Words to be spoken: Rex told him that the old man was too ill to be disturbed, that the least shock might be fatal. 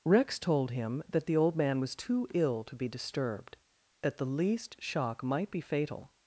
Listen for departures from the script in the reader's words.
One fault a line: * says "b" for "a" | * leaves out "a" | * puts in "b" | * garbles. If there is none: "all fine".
all fine